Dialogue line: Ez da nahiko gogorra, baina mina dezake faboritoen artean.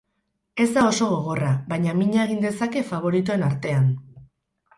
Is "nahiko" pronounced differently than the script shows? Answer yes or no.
yes